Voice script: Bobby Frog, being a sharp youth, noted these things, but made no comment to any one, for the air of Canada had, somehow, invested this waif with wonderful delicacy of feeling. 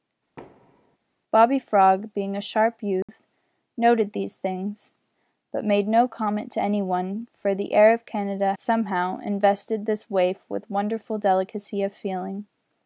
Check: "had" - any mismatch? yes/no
yes